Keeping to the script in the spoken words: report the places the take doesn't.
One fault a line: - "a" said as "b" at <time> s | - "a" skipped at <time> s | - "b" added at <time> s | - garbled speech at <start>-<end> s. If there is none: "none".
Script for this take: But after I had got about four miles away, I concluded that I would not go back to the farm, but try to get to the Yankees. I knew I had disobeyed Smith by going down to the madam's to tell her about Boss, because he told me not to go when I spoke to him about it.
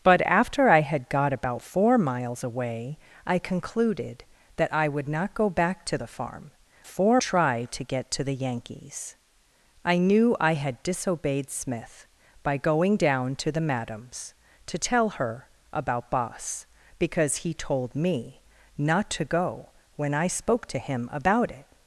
- "but" said as "four" at 6.8 s